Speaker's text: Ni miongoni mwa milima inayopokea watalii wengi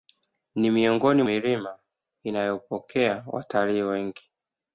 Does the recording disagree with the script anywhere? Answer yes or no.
yes